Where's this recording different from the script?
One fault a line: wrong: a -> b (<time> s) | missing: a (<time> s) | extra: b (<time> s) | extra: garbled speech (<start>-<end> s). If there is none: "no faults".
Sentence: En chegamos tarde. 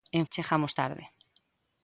no faults